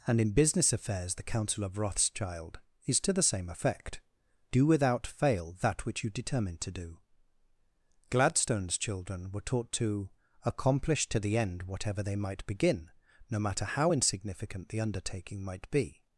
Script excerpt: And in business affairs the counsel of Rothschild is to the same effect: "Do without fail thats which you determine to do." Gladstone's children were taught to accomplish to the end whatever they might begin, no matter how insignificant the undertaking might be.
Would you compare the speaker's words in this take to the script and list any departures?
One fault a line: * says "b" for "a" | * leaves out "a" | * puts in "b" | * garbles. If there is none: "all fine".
* says "that" for "thats"